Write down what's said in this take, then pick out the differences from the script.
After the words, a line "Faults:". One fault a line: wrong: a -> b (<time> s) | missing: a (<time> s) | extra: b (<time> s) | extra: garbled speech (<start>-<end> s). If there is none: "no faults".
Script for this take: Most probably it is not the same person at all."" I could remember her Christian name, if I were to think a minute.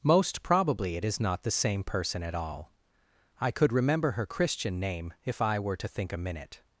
Most probably it is not the same person at all."" I could remember her Christian name, if I were to think a minute.
Faults:
no faults